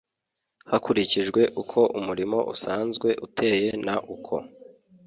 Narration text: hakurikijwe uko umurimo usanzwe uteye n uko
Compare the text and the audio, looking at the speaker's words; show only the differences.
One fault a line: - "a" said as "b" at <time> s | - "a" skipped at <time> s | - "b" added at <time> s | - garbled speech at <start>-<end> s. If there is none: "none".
none